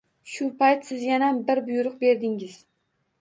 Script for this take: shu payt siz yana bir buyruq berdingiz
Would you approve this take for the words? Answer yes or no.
yes